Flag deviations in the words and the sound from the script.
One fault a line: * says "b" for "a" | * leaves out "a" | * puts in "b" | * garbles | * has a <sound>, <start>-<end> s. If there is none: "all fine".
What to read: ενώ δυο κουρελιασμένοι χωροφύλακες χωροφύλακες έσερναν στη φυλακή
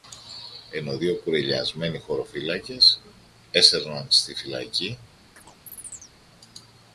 * leaves out "χωροφύλακες"
* has a chirp, 5.4-6.1 s